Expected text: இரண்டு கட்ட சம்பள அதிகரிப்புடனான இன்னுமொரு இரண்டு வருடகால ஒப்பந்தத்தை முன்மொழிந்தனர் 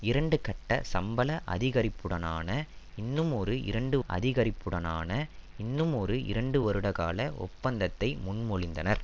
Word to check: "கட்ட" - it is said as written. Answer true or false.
true